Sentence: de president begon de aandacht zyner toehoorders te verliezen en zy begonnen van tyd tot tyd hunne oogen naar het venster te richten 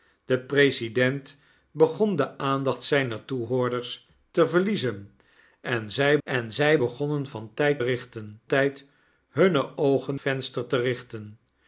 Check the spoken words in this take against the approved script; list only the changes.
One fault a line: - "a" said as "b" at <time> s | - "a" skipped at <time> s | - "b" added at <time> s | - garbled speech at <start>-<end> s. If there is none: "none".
- "en zy" added at 6.2 s
- "tot" said as "richten" at 7.8 s
- "naar het" skipped at 10.2 s